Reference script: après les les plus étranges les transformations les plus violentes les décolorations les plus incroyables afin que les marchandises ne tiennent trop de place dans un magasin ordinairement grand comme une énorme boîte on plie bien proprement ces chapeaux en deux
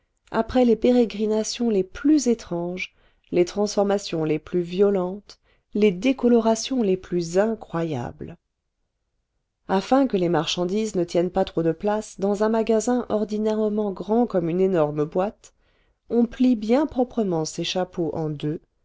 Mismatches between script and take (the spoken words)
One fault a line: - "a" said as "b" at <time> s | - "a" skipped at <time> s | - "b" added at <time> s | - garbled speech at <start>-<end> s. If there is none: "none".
- "pérégrinations" added at 0.8 s
- "pas" added at 11.3 s